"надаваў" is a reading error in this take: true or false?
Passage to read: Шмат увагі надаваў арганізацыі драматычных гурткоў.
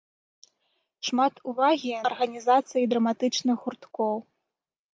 true